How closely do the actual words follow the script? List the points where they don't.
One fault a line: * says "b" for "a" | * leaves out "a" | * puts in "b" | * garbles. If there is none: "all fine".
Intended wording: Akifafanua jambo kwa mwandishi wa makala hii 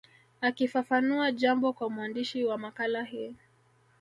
all fine